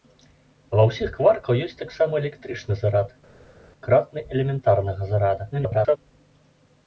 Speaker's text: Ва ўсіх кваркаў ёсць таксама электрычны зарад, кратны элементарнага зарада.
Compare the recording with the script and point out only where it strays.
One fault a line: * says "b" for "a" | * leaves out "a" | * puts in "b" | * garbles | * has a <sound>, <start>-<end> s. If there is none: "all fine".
* garbles